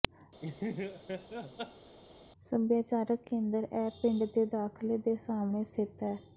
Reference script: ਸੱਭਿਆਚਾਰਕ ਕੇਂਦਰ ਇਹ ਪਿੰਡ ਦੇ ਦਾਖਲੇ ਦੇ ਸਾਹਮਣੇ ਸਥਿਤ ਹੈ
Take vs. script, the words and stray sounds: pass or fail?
fail